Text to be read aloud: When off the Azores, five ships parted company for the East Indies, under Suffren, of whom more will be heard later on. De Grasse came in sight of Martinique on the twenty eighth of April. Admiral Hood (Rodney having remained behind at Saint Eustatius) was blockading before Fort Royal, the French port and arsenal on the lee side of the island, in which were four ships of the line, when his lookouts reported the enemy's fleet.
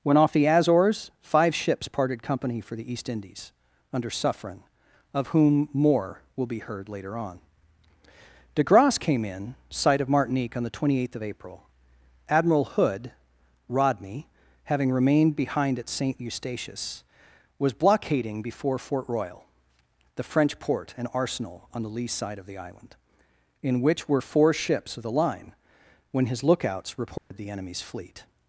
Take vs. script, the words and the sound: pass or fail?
fail